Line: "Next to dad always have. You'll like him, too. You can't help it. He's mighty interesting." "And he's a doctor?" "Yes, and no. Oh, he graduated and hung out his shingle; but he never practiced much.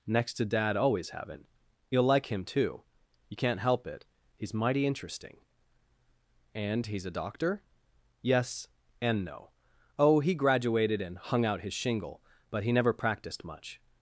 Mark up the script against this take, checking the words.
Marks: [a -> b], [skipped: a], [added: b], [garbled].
"Next to dad always [have. -> haven't] You'll like him, too. You can't help it. He's mighty interesting." "And he's a doctor?" "Yes, and no. Oh, he graduated and hung out his shingle; but he never practiced much.